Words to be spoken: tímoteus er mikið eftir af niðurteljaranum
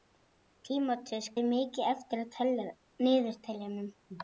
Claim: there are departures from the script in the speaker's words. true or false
false